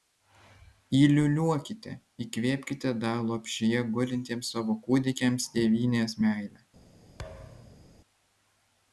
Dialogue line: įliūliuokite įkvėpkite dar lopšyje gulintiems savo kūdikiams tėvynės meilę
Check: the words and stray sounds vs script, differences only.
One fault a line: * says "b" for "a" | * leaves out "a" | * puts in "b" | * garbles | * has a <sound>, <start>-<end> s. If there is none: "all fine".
* has a thud, 7.2-7.9 s